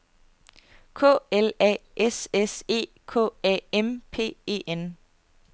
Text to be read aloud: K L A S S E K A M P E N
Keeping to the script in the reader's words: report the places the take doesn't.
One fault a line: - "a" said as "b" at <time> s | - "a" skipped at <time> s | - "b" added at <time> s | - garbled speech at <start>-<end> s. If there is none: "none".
none